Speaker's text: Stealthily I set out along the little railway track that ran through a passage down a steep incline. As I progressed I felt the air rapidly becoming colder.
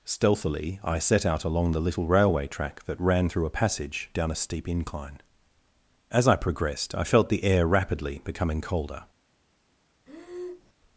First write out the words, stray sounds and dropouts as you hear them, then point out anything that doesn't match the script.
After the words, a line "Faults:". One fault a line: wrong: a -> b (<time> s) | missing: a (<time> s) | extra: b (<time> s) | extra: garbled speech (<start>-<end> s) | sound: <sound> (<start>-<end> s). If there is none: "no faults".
Stealthily I set out along the little railway track that ran through a passage down a steep incline. As I progressed I felt the air rapidly becoming colder.
Faults:
sound: breath (10.1-10.7 s)